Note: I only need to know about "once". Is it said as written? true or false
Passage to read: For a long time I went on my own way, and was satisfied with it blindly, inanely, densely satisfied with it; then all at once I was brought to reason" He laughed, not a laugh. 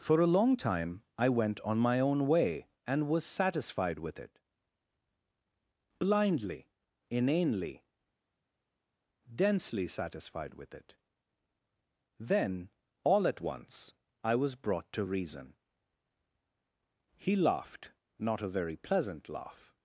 true